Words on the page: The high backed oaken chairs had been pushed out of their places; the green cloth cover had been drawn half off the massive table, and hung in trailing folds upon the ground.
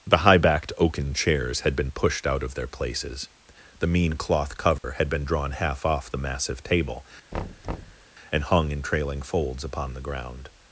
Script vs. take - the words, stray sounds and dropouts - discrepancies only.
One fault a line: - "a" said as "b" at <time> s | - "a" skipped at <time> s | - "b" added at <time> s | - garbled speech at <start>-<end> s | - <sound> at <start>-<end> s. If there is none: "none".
- "green" said as "mean" at 3.9 s
- dropout at 4.8-4.8 s
- thud at 7.3-8.1 s